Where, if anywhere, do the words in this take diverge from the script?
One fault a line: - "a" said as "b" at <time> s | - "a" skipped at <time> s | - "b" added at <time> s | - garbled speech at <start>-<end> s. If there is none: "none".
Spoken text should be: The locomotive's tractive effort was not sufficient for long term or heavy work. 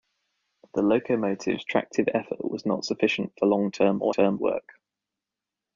- "heavy" said as "term" at 4.1 s